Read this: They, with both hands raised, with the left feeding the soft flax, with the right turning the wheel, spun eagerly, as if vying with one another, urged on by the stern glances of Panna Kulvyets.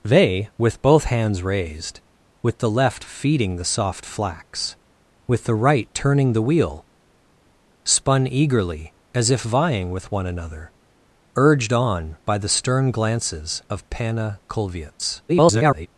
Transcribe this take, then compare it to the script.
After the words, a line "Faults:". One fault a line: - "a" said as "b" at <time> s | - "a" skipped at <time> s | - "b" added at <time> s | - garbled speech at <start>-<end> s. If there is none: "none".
They, with both hands raised, with the left feeding the soft flax, with the right turning the wheel, spun eagerly, as if vying with one another, urged on by the stern glances of Panna Kulvyets. [garbled]
Faults:
- garbled speech at 15.3-15.9 s